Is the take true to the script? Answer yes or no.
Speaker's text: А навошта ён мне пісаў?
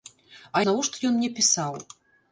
yes